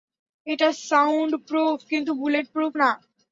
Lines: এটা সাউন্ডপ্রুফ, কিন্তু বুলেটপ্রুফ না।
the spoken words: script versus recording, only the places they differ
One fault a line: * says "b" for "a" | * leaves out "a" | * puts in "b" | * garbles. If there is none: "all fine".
all fine